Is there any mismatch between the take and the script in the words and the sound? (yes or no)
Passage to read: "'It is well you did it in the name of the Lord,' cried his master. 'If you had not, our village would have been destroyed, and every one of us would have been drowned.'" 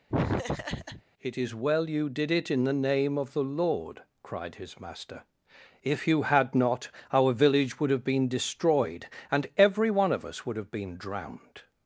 yes